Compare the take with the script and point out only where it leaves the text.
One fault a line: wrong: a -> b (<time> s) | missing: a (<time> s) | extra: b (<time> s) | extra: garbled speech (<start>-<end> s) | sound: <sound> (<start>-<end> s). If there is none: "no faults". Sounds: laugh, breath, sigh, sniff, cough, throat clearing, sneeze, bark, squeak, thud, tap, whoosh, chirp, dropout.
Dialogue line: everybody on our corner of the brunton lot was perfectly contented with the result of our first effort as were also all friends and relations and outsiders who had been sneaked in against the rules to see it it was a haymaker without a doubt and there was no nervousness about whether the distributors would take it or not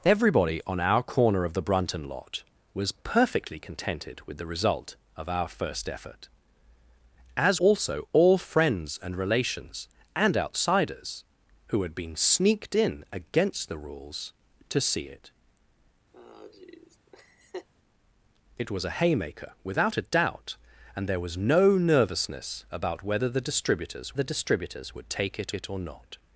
missing: were (7.6 s)
sound: laugh (16.1-17.7 s)
extra: the distributors (24.1 s)
extra: it (25.5 s)